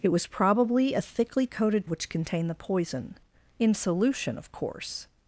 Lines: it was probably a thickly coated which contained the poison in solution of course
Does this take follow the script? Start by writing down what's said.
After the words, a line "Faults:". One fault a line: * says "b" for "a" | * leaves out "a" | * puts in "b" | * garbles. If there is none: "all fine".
it was probably a thickly coated which contained the poison in solution of course
Faults:
all fine